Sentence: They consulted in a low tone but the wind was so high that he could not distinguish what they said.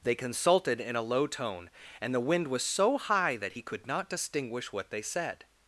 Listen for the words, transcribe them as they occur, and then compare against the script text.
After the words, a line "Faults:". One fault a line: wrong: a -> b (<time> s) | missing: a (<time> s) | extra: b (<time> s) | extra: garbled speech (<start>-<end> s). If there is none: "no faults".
They consulted in a low tone and the wind was so high that he could not distinguish what they said.
Faults:
wrong: but -> and (2.0 s)